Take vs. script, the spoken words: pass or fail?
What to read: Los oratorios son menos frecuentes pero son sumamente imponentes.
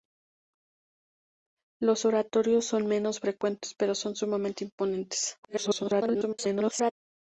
fail